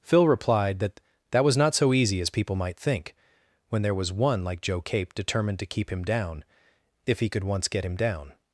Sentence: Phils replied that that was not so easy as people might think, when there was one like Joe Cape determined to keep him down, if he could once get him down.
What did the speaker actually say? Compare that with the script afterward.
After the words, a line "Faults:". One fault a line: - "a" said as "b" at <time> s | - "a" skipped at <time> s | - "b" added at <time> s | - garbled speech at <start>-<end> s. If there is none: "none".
Phil replied that that was not so easy as people might think, when there was one like Joe Cape determined to keep him down, if he could once get him down.
Faults:
- "Phils" said as "Phil" at 0.0 s